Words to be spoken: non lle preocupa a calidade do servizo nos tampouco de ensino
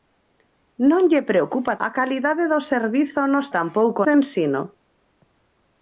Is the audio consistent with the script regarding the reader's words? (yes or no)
yes